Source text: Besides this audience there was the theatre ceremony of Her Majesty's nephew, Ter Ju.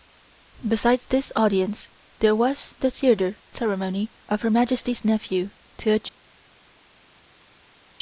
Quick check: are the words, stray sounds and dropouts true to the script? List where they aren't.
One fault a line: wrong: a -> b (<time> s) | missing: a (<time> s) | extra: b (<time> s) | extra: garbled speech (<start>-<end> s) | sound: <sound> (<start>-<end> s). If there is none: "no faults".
no faults